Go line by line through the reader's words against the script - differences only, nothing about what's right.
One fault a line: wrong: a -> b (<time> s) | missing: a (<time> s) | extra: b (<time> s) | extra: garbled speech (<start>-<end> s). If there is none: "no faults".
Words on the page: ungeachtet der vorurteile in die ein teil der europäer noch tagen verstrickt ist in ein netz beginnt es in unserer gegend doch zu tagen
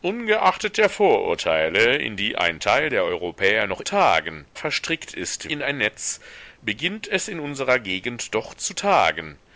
no faults